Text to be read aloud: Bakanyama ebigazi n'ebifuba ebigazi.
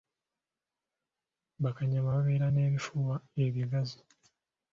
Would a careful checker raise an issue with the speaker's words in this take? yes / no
yes